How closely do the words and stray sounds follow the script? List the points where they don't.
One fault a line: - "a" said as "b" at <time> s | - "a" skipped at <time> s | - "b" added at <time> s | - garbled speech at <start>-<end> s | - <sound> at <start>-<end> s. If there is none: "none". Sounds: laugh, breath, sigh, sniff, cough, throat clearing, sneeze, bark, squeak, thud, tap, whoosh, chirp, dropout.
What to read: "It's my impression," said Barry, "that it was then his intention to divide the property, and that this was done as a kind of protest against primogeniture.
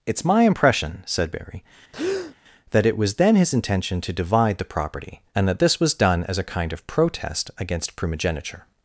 - breath at 1.9-2.4 s